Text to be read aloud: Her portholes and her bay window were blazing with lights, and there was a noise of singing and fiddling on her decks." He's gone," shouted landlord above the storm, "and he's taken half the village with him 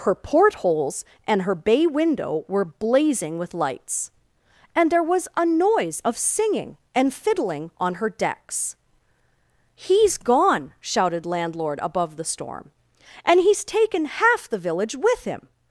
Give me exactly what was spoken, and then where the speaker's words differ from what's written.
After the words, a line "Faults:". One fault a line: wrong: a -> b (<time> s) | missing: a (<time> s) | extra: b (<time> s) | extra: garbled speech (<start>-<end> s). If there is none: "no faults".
Her portholes and her bay window were blazing with lights, and there was a noise of singing and fiddling on her decks." He's gone," shouted landlord above the storm, "and he's taken half the village with him
Faults:
no faults